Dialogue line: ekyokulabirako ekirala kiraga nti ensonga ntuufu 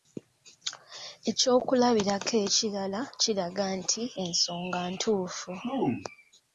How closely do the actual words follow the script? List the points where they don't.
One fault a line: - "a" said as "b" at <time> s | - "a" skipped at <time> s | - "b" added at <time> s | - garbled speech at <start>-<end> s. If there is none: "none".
none